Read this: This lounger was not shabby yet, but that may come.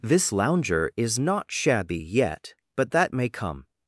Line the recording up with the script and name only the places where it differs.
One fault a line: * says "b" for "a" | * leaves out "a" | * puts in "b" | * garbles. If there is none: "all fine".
* says "is" for "was"